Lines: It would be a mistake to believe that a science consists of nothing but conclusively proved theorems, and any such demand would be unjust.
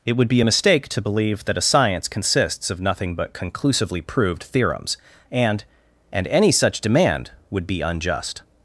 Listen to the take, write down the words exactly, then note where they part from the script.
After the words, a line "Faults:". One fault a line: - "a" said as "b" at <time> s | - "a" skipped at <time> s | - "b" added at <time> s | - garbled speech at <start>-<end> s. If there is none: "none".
It would be a mistake to believe that a science consists of nothing but conclusively proved theorems, and and any such demand would be unjust.
Faults:
- "and" added at 6.1 s